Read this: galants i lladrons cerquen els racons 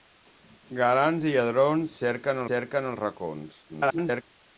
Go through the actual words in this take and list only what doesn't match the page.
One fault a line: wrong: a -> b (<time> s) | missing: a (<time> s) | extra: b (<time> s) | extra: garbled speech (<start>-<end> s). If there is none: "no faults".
extra: cerquen (2.5 s)
extra: garbled speech (3.7-4.2 s)